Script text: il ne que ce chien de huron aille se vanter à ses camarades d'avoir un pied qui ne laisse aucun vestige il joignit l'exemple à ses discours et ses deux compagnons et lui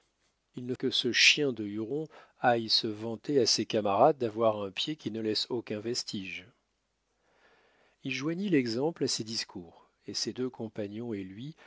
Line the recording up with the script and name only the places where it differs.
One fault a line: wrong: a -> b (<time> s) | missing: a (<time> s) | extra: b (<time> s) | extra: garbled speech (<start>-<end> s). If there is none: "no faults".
no faults